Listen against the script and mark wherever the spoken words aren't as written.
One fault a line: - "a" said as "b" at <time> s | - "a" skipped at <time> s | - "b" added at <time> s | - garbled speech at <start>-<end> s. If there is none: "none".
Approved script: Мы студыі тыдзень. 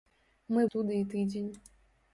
none